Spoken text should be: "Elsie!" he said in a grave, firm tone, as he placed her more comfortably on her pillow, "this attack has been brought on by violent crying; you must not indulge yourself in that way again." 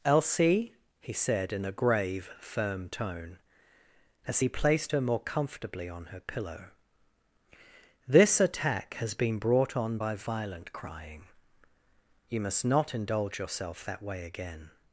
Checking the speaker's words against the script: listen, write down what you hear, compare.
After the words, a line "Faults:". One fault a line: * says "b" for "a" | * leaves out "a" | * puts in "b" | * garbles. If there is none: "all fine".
"Elsie!" he said in a grave, firm tone, as he placed her more comfortably on her pillow, "this attack has been brought on by violent crying; you must not indulge yourself that way again."
Faults:
* leaves out "in"